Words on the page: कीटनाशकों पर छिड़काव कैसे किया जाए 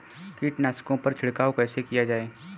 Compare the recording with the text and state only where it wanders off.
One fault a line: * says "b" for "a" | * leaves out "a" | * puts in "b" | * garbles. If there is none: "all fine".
all fine